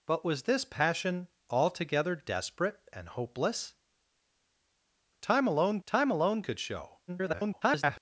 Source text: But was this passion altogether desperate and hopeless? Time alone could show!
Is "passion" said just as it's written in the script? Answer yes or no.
yes